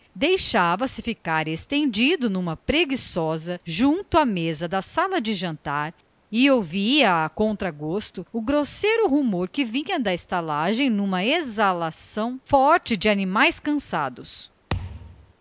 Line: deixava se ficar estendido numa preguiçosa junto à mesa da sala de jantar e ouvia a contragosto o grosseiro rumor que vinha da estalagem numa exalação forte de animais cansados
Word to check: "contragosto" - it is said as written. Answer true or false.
true